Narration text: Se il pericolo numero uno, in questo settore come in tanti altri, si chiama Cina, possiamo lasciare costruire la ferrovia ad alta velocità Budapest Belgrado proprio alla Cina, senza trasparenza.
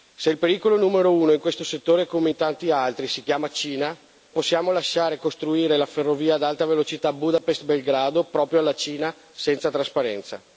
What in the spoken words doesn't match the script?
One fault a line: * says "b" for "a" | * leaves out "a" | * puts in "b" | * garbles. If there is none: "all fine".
all fine